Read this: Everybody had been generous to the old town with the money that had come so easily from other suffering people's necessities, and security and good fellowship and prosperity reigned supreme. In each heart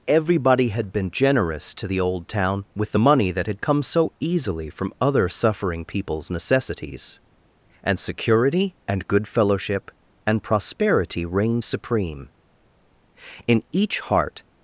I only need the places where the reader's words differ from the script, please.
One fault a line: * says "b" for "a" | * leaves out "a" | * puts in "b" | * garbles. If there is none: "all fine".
all fine